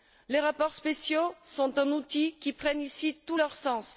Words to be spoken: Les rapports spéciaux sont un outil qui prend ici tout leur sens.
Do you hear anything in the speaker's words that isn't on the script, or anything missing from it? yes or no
no